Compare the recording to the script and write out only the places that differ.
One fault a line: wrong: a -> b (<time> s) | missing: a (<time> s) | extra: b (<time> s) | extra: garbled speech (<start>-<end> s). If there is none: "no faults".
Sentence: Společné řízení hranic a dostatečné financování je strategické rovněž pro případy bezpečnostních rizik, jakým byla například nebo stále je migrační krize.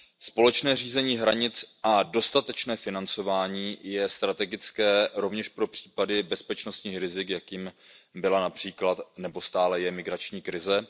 no faults